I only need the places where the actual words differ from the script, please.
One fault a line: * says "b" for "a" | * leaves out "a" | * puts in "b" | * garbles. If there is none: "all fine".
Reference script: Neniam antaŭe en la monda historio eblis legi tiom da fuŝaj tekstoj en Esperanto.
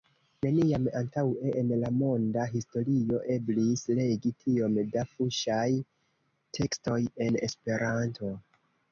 all fine